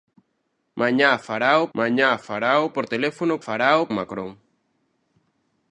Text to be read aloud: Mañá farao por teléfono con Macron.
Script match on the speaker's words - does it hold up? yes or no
no